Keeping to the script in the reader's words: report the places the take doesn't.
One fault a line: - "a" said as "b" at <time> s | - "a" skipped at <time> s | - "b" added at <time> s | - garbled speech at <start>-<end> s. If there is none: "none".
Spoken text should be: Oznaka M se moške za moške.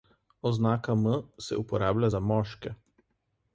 - "moške" said as "uporablja" at 1.6 s